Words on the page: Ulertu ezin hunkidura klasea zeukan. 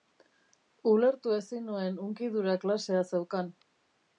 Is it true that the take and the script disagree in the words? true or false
true